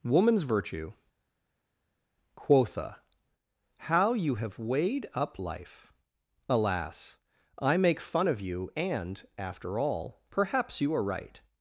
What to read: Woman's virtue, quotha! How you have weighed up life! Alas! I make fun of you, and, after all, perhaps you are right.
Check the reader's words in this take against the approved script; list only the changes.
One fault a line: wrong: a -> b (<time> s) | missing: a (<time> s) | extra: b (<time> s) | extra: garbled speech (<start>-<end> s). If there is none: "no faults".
no faults